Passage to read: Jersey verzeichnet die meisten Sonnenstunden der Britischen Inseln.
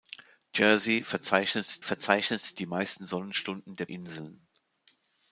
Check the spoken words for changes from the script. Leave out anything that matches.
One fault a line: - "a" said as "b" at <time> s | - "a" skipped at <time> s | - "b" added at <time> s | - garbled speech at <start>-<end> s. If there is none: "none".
- "verzeichnet" added at 1.8 s
- "Britischen" skipped at 3.8 s